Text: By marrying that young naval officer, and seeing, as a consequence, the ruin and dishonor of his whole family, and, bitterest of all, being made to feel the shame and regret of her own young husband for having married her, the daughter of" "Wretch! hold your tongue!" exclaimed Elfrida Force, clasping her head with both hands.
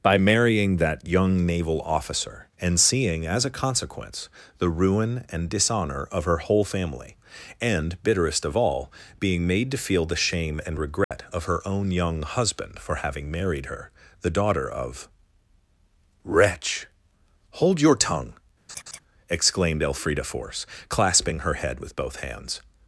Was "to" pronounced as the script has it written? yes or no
yes